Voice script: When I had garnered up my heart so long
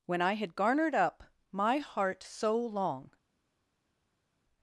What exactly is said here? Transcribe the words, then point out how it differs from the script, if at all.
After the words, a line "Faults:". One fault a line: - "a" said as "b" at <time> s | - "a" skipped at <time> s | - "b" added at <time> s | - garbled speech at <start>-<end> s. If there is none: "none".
When I had garnered up my heart so long
Faults:
none